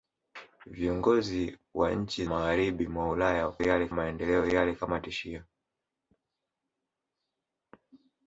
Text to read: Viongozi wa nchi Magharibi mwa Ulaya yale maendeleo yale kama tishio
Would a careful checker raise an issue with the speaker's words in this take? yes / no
no